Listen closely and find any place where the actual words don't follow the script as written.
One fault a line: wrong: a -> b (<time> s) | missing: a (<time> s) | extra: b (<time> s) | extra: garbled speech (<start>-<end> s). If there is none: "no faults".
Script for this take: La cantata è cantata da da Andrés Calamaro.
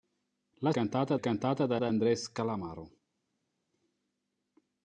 no faults